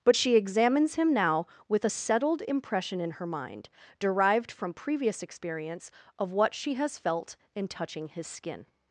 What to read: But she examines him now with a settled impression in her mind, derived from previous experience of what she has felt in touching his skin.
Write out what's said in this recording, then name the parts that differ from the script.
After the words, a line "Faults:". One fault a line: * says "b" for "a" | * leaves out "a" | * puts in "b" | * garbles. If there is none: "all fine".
But she examines him now with a settled impression in her mind, derived from previous experience of what she has felt in touching his skin.
Faults:
all fine